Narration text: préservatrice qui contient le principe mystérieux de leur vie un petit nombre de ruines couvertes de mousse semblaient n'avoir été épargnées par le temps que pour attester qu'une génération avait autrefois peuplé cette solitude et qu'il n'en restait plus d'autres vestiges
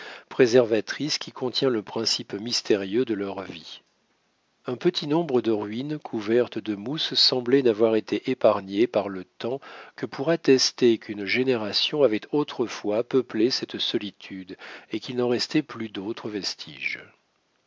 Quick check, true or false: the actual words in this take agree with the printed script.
true